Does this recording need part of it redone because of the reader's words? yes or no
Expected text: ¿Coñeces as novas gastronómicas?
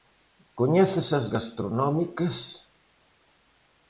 yes